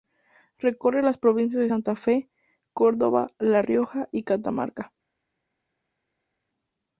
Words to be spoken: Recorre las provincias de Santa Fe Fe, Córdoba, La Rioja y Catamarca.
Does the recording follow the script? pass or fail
fail